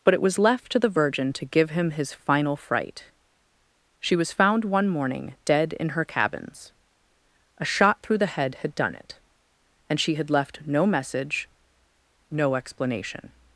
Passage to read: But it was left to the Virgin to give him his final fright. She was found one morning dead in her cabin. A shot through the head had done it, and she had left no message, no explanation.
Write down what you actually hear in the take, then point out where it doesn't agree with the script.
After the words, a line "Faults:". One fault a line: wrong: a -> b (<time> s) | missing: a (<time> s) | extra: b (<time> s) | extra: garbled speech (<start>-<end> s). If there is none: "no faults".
But it was left to the Virgin to give him his final fright. She was found one morning dead in her cabins. A shot through the head had done it, and she had left no message, no explanation.
Faults:
wrong: cabin -> cabins (6.0 s)